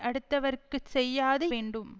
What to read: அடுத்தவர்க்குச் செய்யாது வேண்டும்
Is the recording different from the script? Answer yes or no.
no